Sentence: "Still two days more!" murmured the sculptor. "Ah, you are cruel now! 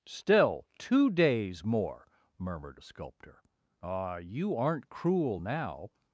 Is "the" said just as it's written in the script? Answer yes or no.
no